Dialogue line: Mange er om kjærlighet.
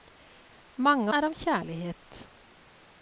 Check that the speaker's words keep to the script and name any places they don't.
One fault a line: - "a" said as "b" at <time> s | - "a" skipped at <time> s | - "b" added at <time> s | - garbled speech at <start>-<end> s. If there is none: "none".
none